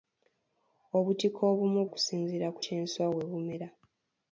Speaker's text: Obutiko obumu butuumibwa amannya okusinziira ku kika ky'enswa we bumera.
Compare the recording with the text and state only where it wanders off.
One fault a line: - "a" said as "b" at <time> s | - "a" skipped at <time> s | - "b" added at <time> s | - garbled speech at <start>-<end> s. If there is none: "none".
- "butuumibwa amannya" skipped at 1.8 s
- "kika" skipped at 2.6 s